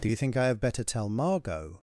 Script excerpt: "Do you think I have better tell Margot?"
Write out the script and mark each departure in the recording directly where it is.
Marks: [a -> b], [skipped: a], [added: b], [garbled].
"Do you think I have better tell Margot?"